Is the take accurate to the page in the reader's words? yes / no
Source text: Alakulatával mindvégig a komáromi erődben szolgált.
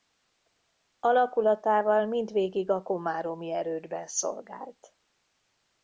yes